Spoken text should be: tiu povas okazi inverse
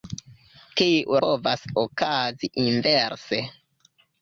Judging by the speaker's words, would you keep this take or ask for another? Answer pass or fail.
pass